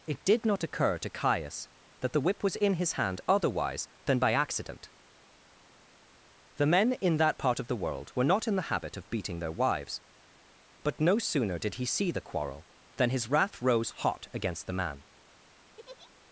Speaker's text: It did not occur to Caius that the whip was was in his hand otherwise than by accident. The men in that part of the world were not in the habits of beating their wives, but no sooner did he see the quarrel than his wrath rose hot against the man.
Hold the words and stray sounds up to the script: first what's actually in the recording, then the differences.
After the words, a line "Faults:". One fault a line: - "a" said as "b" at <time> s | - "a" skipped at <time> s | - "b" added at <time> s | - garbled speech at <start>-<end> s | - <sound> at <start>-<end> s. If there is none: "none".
It did not occur to Caius that the whip was in his hand otherwise than by accident. The men in that part of the world were not in the habit of beating their wives, but no sooner did he see the quarrel than his wrath rose hot against the man.
Faults:
- "was" skipped at 2.6 s
- "habits" said as "habit" at 8.7 s
- laugh at 15.8-16.1 s